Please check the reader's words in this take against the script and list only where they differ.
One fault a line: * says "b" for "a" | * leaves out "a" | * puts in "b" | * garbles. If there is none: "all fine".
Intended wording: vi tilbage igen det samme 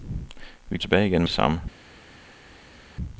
all fine